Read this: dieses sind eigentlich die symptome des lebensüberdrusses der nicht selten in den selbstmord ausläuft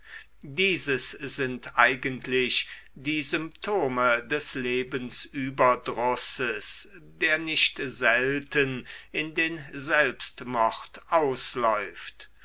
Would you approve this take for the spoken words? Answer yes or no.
yes